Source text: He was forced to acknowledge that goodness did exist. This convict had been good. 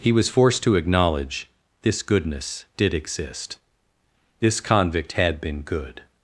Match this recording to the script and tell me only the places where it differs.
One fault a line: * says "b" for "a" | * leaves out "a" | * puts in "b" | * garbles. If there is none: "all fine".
* says "this" for "that"